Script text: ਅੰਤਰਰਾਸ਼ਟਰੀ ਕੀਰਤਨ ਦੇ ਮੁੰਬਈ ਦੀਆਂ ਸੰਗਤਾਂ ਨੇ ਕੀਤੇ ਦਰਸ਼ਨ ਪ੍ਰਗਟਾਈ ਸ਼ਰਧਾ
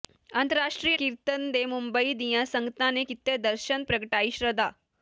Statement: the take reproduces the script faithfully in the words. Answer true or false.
true